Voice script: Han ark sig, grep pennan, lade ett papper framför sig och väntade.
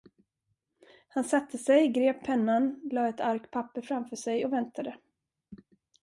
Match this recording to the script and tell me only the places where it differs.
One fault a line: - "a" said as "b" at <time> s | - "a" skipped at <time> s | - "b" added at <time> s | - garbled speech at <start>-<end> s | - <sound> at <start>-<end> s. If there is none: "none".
- "ark" said as "satte" at 1.2 s
- "ark" added at 3.2 s